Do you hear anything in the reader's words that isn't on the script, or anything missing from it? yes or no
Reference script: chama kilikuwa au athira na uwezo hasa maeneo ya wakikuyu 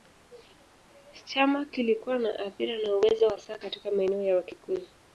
yes